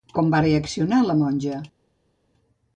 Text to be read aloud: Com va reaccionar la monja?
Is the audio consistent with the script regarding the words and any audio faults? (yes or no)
yes